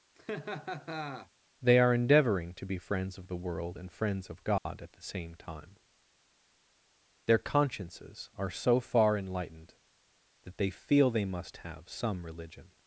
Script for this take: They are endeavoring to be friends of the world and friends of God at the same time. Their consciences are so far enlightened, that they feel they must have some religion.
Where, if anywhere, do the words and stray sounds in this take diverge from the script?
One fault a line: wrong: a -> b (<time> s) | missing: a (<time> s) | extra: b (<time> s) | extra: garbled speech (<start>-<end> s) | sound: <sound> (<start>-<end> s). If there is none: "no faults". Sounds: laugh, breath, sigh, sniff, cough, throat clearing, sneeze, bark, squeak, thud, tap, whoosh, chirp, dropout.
sound: laugh (0.1-1.3 s)
sound: dropout (4.6-4.7 s)